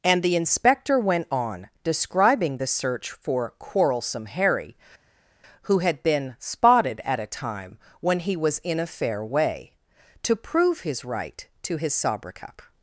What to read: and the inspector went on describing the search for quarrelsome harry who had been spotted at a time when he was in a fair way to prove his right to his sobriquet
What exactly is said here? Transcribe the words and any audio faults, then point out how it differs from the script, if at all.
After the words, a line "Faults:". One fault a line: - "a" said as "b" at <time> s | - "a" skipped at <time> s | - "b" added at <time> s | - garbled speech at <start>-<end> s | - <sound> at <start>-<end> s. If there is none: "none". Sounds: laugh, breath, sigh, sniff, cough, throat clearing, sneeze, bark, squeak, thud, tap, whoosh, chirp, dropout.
and the inspector went on describing the search for quarrelsome harry who had been spotted at a time when he was in a fair way to prove his right to his sobriquet
Faults:
none